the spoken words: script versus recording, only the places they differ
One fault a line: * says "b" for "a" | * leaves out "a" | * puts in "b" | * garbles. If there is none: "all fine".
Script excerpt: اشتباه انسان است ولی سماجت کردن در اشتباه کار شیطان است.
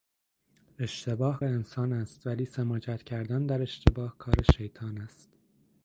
all fine